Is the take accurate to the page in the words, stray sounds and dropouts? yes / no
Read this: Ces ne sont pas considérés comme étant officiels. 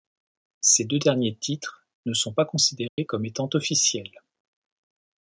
no